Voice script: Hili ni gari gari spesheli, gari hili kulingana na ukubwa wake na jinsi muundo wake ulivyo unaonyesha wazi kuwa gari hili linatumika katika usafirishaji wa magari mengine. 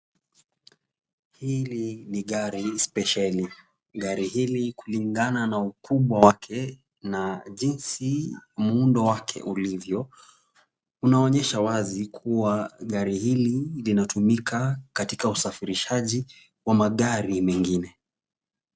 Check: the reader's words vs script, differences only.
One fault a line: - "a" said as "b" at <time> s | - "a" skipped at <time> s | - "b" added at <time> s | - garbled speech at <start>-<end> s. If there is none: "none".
- "gari" skipped at 2.8 s